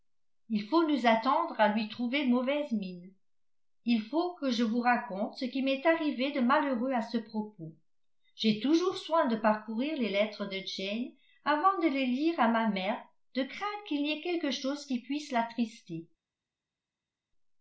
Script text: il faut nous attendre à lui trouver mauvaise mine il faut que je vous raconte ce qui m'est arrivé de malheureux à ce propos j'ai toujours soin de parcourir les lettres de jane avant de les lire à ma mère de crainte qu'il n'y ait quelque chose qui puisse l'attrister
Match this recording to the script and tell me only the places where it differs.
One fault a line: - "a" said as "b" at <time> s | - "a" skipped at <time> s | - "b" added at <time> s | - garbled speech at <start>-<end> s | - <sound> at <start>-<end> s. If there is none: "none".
none